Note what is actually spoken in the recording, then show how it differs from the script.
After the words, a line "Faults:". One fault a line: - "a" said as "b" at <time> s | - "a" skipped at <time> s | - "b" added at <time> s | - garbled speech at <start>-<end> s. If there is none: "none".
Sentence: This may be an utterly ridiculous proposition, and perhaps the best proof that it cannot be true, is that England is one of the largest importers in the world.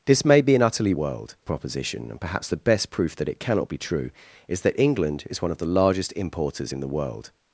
This may be an utterly world proposition, and perhaps the best proof that it cannot be true, is that England is one of the largest importers in the world.
Faults:
- "ridiculous" said as "world" at 0.9 s